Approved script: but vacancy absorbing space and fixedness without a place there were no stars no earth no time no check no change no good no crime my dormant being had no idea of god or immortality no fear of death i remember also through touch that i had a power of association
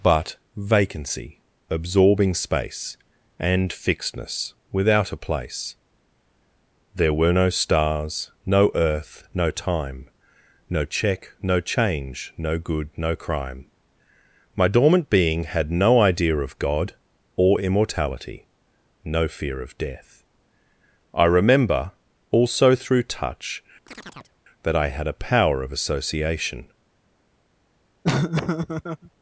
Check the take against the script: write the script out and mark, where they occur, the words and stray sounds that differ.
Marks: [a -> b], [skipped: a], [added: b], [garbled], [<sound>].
but vacancy absorbing space and fixedness without a place there were no stars no earth no time no check no change no good no crime my dormant being had no idea of god or immortality no fear of death i remember also through touch [chirp] that i had a power of association [laugh]